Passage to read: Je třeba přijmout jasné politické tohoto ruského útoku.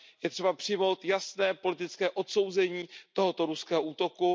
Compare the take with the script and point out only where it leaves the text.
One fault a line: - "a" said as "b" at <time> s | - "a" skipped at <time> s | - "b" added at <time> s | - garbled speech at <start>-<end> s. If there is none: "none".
- "odsouzení" added at 2.1 s